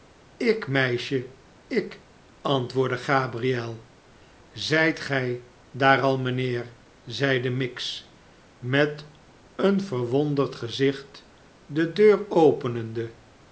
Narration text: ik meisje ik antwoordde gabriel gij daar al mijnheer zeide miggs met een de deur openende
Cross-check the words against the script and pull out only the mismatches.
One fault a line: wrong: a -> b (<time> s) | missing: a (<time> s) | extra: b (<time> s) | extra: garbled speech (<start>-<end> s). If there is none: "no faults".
extra: zijt (4.5 s)
extra: verwonderd gezicht (9.8 s)